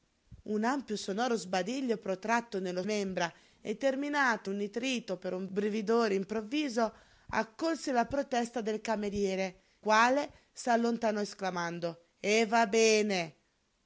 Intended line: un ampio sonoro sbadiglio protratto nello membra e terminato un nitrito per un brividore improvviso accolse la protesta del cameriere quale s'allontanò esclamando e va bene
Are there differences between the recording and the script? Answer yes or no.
no